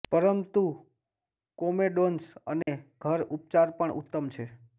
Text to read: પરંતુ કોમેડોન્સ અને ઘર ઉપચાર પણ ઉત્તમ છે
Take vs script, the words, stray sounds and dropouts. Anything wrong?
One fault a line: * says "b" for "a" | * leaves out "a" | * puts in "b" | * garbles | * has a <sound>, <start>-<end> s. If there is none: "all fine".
* has a dropout, 2.6-2.7 s